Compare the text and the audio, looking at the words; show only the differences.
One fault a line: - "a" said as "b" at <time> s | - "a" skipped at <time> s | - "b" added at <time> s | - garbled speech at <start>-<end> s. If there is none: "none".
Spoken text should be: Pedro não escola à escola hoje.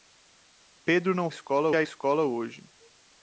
none